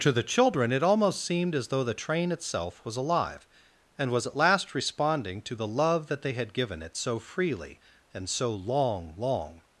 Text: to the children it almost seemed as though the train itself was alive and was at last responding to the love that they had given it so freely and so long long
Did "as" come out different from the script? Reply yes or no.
no